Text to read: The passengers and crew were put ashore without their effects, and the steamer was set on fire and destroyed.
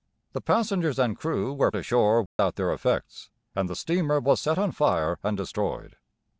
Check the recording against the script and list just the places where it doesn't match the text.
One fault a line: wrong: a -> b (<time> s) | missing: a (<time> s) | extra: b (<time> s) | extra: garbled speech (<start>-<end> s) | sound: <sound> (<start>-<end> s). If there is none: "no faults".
missing: put (1.7 s)
sound: dropout (2.3-2.4 s)